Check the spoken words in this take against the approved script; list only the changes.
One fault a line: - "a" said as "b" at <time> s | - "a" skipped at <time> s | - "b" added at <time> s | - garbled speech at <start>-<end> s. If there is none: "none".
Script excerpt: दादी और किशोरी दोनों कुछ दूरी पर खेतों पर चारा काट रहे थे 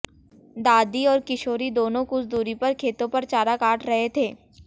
none